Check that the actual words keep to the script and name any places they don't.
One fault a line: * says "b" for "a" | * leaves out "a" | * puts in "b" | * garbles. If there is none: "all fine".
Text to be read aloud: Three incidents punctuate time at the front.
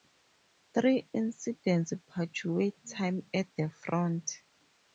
all fine